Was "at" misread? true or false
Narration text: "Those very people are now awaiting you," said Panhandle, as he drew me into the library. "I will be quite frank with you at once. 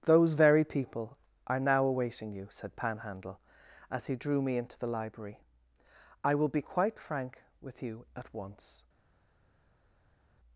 false